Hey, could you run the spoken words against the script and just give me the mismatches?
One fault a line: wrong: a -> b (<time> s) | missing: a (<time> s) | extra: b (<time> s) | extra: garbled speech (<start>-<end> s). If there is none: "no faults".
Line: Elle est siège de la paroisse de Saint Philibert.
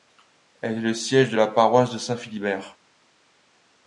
extra: le (0.8 s)